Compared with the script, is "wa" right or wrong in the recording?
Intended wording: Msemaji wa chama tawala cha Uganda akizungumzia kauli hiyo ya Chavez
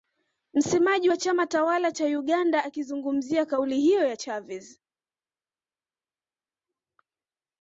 right